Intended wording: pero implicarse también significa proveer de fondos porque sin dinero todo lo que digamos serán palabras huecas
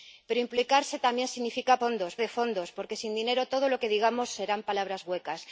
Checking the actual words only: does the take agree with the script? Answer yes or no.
no